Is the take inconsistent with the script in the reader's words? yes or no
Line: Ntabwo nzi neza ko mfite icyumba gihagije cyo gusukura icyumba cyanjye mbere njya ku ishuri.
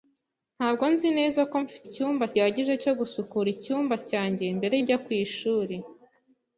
no